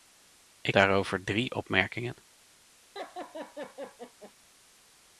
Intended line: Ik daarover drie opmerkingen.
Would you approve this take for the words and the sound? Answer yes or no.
no